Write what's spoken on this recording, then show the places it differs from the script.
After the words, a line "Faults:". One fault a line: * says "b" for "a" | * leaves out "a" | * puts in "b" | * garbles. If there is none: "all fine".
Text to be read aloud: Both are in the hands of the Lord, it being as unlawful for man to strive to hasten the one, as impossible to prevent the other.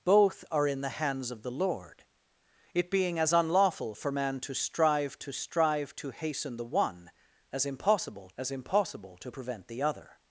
Both are in the hands of the Lord, it being as unlawful for man to strive to strive to hasten the one, as impossible as impossible to prevent the other.
Faults:
* puts in "strive to"
* puts in "as impossible"